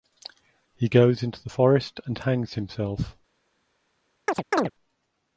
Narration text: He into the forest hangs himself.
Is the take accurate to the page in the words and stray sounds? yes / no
no